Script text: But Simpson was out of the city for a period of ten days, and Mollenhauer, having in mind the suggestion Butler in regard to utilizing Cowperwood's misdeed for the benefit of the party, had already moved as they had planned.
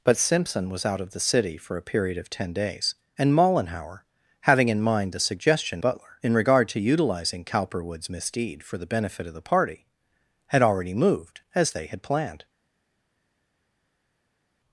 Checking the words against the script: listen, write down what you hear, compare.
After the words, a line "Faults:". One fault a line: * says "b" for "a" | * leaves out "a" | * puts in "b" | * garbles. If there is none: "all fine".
But Simpson was out of the city for a period of ten days, and Mollenhauer, having in mind the suggestion Butler in regard to utilizing Cowperwood's misdeed for the benefit of the party, had already moved as they had planned.
Faults:
all fine